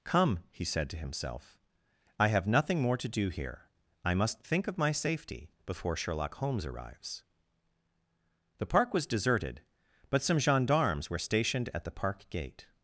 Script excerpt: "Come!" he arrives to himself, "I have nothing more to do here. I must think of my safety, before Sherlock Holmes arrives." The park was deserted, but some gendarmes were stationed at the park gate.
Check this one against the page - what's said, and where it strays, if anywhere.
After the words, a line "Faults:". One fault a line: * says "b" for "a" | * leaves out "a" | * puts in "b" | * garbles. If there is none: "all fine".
"Come!" he said to himself, "I have nothing more to do here. I must think of my safety, before Sherlock Holmes arrives." The park was deserted, but some gendarmes were stationed at the park gate.
Faults:
* says "said" for "arrives"